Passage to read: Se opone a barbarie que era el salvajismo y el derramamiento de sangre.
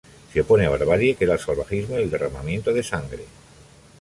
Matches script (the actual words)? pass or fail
pass